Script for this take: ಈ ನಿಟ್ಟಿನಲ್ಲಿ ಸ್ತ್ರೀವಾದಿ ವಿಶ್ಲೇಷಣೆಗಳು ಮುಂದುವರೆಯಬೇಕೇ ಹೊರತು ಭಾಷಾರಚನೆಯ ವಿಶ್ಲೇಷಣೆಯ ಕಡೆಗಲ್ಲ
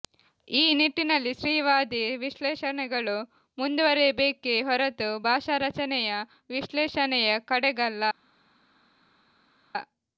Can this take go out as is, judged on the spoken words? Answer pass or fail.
pass